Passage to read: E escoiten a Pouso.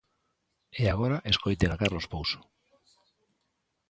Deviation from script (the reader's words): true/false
true